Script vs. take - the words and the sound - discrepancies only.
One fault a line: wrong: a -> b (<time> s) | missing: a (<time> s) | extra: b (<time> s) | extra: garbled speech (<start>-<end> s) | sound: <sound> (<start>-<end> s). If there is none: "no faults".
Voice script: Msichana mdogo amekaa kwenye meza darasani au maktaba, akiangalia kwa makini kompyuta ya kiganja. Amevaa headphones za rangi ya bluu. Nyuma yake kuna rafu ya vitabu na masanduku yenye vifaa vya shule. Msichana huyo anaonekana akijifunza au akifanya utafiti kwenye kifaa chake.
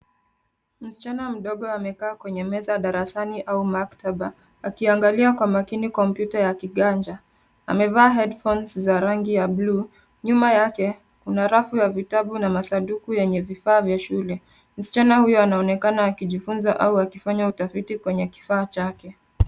no faults